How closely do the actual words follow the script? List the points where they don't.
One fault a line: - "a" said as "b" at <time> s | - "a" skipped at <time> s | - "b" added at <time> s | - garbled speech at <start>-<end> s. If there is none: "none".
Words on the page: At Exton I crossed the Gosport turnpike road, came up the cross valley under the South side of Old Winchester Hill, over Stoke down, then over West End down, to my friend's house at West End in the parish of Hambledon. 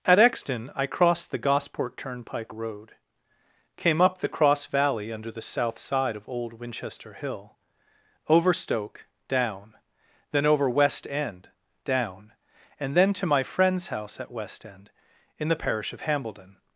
- "and then" added at 12.8 s